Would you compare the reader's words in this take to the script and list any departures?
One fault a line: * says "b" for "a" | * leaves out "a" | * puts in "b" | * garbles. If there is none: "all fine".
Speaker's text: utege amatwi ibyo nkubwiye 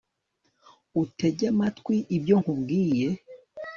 all fine